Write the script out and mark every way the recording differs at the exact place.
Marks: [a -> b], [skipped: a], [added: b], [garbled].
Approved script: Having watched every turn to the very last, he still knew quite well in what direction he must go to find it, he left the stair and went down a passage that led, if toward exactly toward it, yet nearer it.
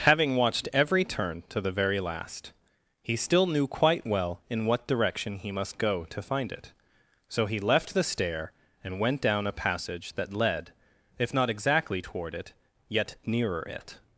Having watched every turn to the very last, he still knew quite well in what direction he must go to find it, [added: so] he left the stair and went down a passage that led, if [toward -> not] exactly toward it, yet nearer it.